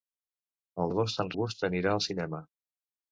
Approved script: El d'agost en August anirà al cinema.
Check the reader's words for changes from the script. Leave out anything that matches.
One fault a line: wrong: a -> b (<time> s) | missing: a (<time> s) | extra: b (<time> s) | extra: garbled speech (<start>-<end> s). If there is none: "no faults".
no faults